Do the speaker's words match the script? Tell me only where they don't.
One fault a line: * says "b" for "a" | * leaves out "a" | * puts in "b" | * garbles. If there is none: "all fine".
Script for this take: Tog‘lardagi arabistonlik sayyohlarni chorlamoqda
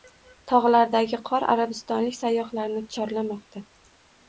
* puts in "qor"